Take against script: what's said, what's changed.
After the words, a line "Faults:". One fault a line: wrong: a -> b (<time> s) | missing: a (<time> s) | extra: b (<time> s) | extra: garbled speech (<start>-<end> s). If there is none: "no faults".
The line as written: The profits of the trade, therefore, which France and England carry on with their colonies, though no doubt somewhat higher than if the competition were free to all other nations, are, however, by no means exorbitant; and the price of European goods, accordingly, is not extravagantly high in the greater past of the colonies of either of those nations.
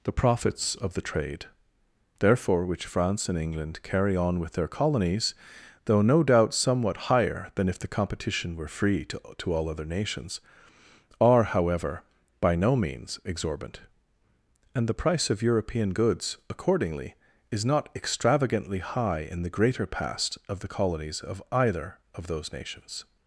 The profits of the trade, therefore, which France and England carry on with their colonies, though no doubt somewhat higher than if the competition were free to to all other nations, are, however, by no means exorbitant; and the price of European goods, accordingly, is not extravagantly high in the greater past of the colonies of either of those nations.
Faults:
extra: to (9.4 s)